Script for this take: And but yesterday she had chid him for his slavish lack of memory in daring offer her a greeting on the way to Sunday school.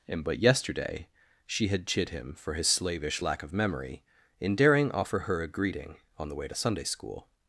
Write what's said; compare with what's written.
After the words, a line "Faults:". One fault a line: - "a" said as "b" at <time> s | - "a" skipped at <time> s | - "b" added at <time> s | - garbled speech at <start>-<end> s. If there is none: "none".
And but yesterday she had chid him for his slavish lack of memory in daring offer her a greeting on the way to Sunday school.
Faults:
none